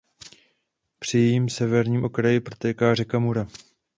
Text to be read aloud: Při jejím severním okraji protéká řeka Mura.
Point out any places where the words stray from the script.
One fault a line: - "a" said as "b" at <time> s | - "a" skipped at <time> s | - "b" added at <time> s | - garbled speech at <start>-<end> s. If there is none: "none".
none